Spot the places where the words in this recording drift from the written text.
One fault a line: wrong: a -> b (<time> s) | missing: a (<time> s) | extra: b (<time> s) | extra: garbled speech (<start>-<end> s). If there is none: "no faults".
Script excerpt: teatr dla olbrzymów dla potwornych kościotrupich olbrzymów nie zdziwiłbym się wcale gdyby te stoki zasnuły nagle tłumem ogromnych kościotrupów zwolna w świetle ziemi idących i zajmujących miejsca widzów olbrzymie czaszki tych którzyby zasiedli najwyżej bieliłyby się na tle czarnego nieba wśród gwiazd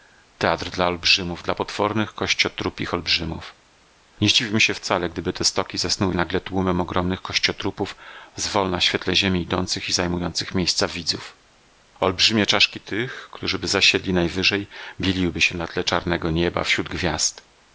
no faults